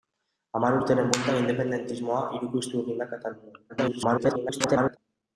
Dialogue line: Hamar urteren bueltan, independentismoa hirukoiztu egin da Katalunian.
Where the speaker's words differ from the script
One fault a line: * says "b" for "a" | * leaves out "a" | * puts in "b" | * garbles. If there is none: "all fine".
* garbles